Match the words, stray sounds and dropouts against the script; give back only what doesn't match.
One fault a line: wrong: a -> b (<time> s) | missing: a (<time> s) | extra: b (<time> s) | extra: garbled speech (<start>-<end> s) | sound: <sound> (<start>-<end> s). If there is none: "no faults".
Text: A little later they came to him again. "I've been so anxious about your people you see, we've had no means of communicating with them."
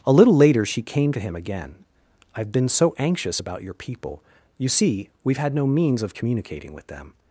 wrong: they -> she (0.7 s)